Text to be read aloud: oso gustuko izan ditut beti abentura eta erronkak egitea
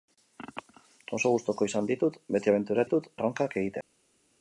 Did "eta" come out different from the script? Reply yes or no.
yes